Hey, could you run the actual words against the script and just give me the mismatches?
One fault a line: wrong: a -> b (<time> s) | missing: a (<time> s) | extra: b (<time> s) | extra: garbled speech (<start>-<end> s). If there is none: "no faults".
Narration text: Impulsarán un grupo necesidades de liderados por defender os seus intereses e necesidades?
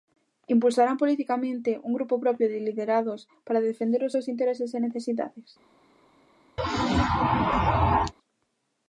extra: politicamente (1.0 s)
wrong: necesidades -> propio (2.2 s)
wrong: por -> para (3.5 s)